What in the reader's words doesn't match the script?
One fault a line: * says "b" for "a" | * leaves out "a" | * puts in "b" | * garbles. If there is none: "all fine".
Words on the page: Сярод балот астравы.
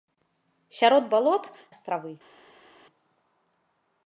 all fine